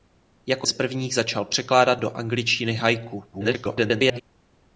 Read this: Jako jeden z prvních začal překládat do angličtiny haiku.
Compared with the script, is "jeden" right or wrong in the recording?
wrong